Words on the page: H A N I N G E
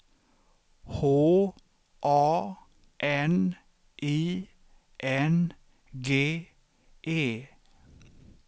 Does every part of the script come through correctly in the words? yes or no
yes